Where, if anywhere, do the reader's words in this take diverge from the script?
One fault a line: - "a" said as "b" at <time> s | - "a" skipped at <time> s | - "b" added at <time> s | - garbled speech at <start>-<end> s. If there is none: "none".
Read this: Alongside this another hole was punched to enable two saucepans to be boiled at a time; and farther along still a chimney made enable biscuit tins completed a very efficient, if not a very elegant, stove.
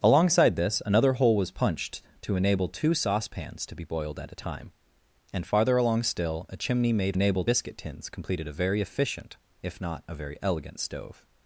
none